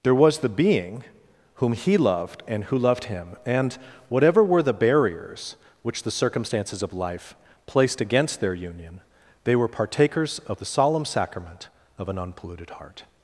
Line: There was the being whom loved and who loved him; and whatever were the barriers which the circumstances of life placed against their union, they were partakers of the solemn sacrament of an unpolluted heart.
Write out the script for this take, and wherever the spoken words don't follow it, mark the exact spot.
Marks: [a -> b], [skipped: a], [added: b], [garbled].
There was the being whom [added: he] loved and who loved him; and whatever were the barriers which the circumstances of life placed against their union, they were partakers of the solemn sacrament of an unpolluted heart.